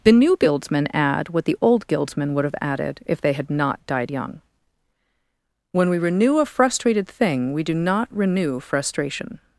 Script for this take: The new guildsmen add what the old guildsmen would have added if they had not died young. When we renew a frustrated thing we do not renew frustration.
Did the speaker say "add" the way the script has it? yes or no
yes